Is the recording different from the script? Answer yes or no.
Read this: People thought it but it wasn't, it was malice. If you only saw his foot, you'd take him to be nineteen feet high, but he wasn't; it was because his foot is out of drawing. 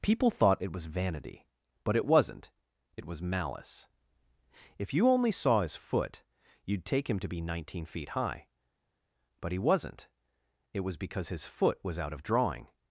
yes